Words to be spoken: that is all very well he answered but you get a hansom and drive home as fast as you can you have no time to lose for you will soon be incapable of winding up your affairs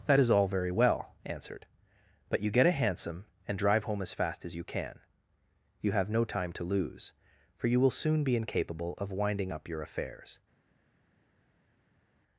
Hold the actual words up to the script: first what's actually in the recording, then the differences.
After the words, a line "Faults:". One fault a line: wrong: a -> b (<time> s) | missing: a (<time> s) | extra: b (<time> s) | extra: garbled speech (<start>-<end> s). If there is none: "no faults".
that is all very well answered but you get a hansom and drive home as fast as you can you have no time to lose for you will soon be incapable of winding up your affairs
Faults:
missing: he (1.1 s)